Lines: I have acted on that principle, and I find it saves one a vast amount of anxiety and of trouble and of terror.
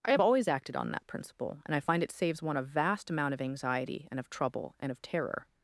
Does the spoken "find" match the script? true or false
true